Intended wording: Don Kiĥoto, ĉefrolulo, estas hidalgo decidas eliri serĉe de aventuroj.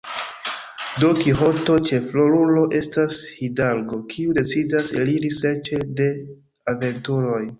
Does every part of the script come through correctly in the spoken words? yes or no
no